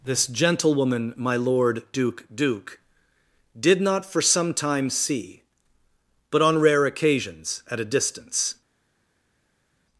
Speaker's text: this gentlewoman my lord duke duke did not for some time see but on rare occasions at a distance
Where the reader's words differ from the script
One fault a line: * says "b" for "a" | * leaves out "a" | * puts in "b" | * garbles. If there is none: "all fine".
all fine